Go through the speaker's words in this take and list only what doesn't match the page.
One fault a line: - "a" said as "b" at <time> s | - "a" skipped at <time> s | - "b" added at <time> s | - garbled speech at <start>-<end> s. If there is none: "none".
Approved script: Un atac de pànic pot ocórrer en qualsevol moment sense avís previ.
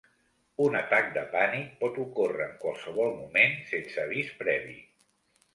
none